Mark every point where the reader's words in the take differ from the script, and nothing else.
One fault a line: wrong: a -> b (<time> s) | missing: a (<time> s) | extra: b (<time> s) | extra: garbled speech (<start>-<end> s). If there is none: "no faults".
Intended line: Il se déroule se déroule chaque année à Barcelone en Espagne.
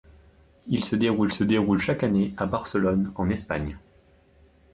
no faults